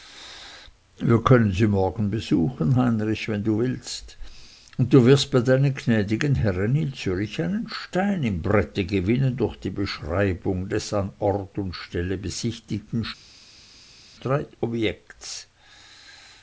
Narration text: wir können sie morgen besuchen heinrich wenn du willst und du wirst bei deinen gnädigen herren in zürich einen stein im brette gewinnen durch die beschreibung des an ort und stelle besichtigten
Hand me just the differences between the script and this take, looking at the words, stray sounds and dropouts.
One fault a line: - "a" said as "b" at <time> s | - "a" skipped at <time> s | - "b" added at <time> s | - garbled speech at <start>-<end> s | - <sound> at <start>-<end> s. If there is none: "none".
none